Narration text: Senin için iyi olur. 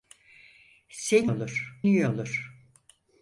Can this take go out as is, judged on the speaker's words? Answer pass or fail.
fail